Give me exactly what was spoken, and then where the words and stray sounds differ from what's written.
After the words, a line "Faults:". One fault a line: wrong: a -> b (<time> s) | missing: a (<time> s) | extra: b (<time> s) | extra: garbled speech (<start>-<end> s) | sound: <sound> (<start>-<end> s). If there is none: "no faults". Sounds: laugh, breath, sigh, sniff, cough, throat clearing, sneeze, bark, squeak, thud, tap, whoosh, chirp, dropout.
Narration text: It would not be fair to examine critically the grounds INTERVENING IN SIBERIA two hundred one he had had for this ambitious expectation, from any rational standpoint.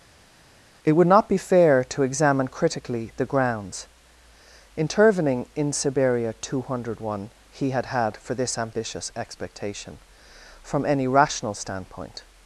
It would not be fair to examine critically the grounds INTERVENING IN SIBERIA two hundred one he had had for this ambitious expectation, from any rational standpoint.
Faults:
no faults